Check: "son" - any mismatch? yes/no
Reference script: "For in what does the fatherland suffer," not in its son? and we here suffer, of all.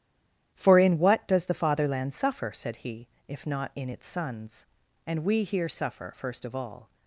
yes